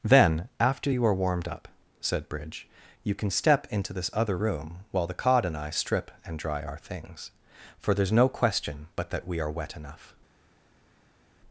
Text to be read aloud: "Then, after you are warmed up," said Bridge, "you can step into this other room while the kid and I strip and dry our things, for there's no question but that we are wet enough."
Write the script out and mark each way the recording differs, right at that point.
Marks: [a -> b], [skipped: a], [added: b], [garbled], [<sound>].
"Then, after you are warmed up," said Bridge, "you can step into this other room while the [kid -> cod] and I strip and dry our things, for there's no question but that we are wet enough."